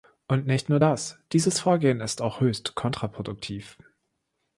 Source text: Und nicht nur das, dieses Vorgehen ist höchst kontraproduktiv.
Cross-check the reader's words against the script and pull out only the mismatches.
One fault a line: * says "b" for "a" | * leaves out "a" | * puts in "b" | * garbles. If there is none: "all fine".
* puts in "auch"